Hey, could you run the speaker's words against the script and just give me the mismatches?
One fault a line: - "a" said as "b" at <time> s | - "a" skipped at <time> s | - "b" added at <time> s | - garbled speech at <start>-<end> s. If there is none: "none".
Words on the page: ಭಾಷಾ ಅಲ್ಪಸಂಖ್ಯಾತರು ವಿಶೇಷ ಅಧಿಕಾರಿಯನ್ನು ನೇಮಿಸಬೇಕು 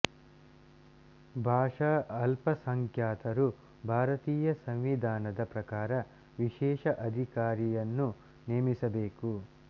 - "ಭಾರತೀಯ ಸಂವಿಧಾನದ ಪ್ರಕಾರ" added at 3.8 s